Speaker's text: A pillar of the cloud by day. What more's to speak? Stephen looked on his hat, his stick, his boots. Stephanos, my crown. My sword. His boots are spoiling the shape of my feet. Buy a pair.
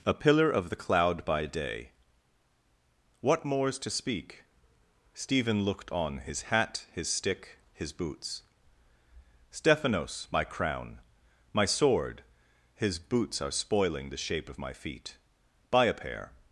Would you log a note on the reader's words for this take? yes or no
no